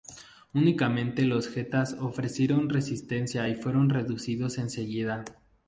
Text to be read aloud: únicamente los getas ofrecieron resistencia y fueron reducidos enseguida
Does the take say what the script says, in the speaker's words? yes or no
yes